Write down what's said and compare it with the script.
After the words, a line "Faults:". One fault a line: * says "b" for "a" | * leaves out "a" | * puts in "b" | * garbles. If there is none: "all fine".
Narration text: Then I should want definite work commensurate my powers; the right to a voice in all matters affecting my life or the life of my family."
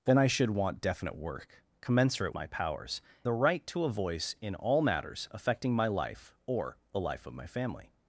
Then I should want definite work commensurate my powers; the right to a voice in all matters affecting my life or the life of my family."
Faults:
all fine